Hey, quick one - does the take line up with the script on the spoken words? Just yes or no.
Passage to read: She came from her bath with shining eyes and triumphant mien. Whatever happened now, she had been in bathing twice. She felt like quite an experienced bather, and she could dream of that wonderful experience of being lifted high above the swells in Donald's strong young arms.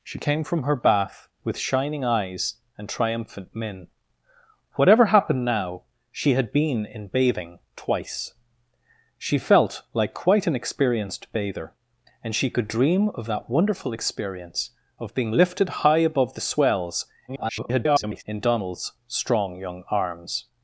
no